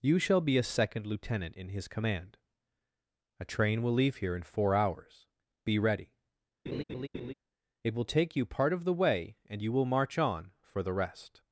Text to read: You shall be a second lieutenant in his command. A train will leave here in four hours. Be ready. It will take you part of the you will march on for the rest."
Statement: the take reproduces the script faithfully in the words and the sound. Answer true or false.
false